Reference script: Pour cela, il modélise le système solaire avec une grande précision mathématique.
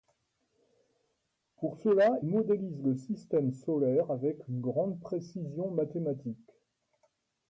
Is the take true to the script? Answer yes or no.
no